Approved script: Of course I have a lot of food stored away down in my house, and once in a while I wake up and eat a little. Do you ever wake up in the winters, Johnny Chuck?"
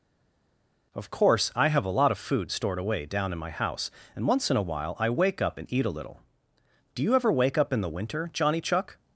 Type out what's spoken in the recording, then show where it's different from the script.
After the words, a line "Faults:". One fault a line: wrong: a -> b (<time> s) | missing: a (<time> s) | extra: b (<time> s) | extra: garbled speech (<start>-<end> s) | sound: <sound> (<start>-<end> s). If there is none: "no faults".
Of course I have a lot of food stored away down in my house, and once in a while I wake up and eat a little. Do you ever wake up in the winter, Johnny Chuck?"
Faults:
wrong: winters -> winter (7.9 s)